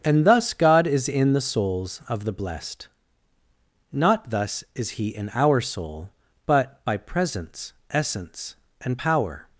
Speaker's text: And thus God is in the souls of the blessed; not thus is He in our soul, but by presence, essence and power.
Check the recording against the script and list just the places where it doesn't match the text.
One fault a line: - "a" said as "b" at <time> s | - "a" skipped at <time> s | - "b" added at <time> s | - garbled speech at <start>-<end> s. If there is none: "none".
none